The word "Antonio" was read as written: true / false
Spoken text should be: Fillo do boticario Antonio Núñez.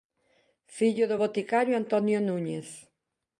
true